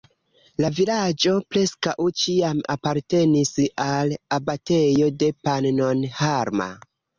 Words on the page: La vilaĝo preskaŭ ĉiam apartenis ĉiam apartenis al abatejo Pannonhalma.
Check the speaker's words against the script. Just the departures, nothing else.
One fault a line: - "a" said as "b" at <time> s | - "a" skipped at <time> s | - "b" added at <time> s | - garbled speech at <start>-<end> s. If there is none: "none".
- "ĉiam apartenis" skipped at 3.5 s
- "de" added at 5.2 s